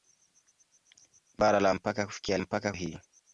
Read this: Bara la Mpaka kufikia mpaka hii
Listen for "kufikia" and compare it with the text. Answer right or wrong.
right